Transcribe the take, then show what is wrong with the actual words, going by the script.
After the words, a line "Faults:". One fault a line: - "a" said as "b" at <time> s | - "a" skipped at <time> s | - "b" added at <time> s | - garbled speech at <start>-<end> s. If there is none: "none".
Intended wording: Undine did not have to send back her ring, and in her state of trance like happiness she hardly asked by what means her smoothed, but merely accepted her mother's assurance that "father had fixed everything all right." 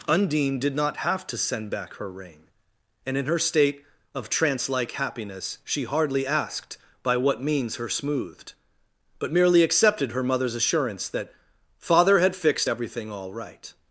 Undine did not have to send back her ring, and in her state of trance like happiness she hardly asked by what means her smoothed, but merely accepted her mother's assurance that "father had fixed everything all right."
Faults:
none